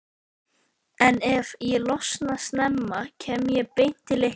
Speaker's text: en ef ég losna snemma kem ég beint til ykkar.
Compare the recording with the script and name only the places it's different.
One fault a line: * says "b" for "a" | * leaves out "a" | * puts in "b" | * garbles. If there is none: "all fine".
all fine